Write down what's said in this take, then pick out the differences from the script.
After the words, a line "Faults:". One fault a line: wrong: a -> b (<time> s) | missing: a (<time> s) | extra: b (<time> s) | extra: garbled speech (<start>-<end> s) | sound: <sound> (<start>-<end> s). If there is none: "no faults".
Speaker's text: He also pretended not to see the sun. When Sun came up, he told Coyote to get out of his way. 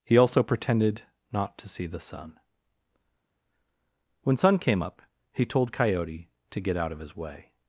He also pretended not to see the sun. When Sun came up, he told Coyote to get out of his way.
Faults:
no faults